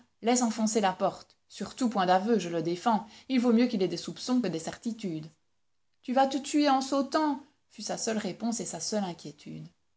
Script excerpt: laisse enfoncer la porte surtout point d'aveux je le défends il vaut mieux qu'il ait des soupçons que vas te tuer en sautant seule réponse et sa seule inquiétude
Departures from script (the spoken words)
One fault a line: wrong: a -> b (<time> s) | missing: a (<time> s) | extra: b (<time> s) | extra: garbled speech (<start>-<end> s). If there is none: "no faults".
extra: des certitudes tu (4.5 s)
extra: fut sa (7.7 s)